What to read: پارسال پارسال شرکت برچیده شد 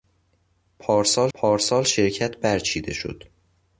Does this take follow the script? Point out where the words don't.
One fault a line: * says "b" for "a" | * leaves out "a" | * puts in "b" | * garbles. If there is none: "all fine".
all fine